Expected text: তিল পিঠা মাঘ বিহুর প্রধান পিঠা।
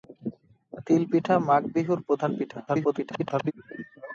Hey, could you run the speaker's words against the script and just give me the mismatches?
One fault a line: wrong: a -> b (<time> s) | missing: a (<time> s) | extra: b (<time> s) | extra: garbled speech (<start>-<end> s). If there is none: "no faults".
extra: garbled speech (2.7-3.5 s)